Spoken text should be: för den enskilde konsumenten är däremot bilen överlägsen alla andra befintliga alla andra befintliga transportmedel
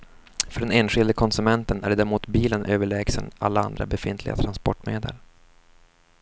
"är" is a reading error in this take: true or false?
false